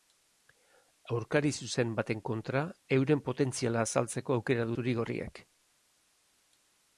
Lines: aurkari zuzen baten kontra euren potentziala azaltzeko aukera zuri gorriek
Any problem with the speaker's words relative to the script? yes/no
no